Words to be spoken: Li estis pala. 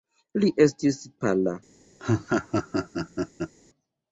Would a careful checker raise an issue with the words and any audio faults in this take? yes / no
yes